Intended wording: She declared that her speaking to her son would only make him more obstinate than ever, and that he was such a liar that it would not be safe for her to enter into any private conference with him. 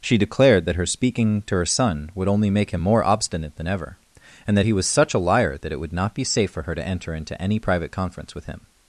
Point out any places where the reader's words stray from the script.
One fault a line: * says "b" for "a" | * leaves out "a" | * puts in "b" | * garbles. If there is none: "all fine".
all fine